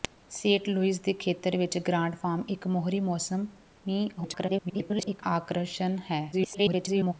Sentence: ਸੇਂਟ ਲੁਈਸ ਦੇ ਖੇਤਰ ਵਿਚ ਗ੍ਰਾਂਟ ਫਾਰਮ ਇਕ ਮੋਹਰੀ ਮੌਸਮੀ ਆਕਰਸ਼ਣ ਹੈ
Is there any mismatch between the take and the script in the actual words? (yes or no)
yes